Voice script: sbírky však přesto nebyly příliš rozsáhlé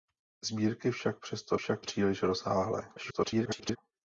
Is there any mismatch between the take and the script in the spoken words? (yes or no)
yes